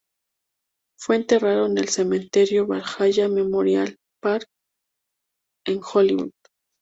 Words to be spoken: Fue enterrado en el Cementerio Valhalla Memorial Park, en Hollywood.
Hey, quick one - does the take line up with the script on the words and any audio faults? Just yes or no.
yes